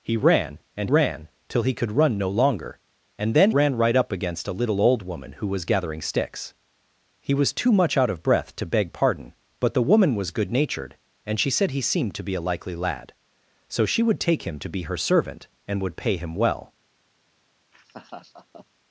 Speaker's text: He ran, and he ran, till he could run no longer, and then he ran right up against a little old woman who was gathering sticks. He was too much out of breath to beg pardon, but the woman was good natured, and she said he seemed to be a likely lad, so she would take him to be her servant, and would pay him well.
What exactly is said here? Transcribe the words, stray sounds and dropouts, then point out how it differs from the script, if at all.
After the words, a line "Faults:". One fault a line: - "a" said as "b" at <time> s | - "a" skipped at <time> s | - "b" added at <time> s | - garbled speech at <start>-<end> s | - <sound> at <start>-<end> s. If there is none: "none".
He ran, and ran, till he could run no longer, and then ran right up against a little old woman who was gathering sticks. He was too much out of breath to beg pardon, but the woman was good natured, and she said he seemed to be a likely lad, so she would take him to be her servant, and would pay him well.
Faults:
- "he" skipped at 0.9 s
- "he" skipped at 3.5 s
- laugh at 17.7-18.7 s